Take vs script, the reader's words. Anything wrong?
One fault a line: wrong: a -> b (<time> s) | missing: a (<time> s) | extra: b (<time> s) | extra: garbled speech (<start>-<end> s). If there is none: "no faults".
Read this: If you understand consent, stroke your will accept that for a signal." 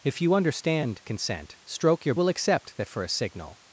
no faults